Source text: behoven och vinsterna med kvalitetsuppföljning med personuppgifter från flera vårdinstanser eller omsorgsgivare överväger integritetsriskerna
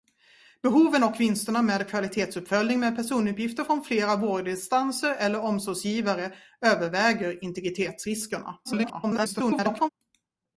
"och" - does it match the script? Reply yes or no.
yes